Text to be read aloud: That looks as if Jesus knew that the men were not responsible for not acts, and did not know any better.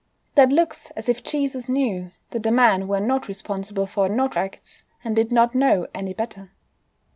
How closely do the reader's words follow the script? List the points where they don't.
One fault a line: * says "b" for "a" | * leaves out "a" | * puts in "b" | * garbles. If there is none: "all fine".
all fine